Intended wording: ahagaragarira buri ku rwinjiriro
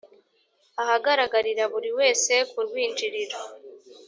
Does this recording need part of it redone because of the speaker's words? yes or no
yes